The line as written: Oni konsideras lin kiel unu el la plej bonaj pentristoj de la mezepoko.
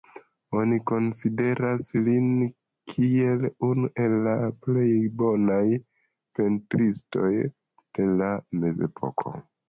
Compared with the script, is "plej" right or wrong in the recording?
right